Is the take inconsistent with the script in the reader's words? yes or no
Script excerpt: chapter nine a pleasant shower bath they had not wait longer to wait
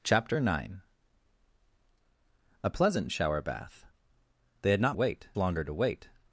no